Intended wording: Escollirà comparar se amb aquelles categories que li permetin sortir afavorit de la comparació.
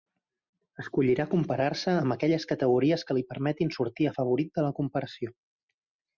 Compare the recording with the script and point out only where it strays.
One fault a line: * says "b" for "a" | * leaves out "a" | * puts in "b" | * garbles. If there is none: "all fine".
all fine